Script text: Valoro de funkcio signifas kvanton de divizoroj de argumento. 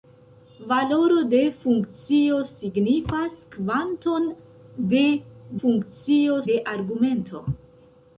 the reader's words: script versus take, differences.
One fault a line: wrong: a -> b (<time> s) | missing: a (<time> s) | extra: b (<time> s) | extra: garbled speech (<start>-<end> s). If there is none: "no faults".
wrong: divizoroj -> funkcio (5.6 s)